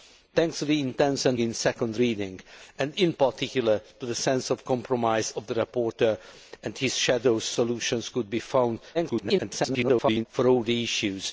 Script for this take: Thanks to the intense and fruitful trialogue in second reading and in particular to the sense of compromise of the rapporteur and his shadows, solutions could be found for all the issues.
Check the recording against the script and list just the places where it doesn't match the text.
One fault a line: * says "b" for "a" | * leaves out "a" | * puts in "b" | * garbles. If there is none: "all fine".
* leaves out "fruitful trialogue"
* garbles